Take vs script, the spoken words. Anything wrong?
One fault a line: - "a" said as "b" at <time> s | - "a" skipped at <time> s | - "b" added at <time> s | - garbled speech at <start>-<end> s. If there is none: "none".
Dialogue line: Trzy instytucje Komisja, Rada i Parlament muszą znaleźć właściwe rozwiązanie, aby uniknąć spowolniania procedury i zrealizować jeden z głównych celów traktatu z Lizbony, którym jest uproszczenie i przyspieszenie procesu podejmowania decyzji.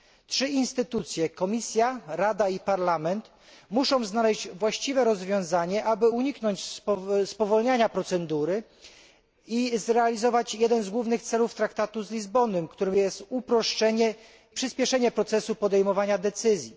- "i" skipped at 14.1 s